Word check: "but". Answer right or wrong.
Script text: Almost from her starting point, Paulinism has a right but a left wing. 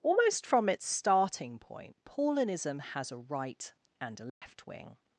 wrong